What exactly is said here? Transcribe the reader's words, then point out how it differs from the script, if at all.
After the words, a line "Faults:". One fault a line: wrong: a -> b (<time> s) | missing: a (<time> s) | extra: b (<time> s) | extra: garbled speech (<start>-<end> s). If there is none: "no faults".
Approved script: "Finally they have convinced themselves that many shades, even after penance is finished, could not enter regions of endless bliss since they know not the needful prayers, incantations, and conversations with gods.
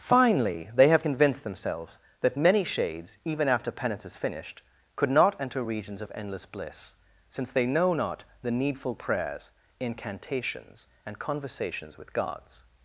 "Finally they have convinced themselves that many shades, even after penance is finished, could not enter regions of endless bliss since they know not the needful prayers, incantations, and conversations with gods.
Faults:
no faults